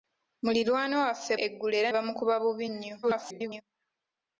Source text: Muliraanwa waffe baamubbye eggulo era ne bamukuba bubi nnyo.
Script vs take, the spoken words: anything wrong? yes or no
yes